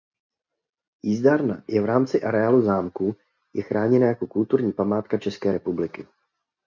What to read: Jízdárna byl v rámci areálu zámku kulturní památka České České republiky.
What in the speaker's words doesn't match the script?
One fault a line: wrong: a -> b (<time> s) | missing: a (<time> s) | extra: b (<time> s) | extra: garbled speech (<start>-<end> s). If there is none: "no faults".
wrong: byl -> je (1.7 s)
extra: je chráněna jako (3.5 s)
missing: České (5.5 s)